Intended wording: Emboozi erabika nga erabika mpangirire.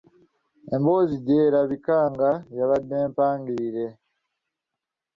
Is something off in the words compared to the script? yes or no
yes